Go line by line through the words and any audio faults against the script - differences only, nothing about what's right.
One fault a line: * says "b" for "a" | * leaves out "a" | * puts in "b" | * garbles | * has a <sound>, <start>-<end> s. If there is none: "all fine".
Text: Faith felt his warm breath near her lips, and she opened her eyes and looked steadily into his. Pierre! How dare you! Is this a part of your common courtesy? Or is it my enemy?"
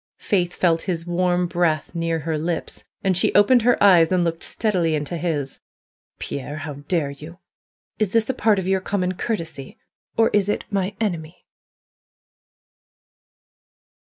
all fine